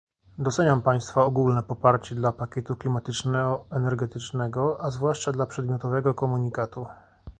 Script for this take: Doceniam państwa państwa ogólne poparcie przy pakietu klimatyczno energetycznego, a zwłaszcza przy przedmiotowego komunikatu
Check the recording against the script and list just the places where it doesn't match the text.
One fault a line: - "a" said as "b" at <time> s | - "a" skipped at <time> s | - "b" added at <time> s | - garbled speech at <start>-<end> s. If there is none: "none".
- "państwa" skipped at 1.2 s
- "przy" said as "dla" at 2.2 s
- "przy" said as "dla" at 5.3 s